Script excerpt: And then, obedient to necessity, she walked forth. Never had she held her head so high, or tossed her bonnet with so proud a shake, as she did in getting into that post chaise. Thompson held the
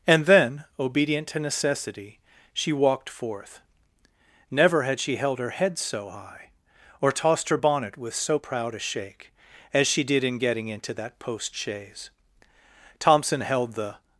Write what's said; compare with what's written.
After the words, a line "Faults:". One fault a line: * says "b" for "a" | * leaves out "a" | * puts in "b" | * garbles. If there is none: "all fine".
And then, obedient to necessity, she walked forth. Never had she held her head so high, or tossed her bonnet with so proud a shake, as she did in getting into that post chaise. Thompson held the
Faults:
all fine